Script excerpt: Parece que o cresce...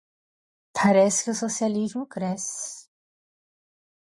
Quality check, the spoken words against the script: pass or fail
fail